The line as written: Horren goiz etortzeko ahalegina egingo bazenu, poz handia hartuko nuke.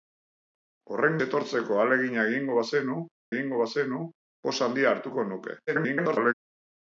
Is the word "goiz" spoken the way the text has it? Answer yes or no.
no